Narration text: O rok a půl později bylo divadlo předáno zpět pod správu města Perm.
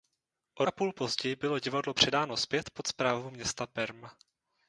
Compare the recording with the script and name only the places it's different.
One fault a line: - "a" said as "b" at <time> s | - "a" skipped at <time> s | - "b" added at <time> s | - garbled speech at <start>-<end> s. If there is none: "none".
- "rok" skipped at 0.7 s